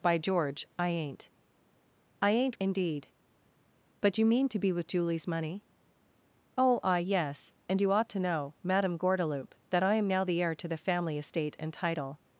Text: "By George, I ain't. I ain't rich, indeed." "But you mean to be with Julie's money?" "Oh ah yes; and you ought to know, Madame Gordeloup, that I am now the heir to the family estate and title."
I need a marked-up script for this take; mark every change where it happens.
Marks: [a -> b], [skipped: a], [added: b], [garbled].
"By George, I ain't. I ain't [skipped: rich,] indeed." "But you mean to be with Julie's money?" "Oh ah yes; and you ought to know, Madame Gordeloup, that I am now the heir to the family estate and title."